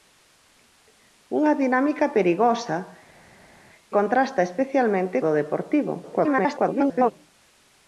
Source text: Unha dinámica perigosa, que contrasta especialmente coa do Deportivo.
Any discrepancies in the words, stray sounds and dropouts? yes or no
yes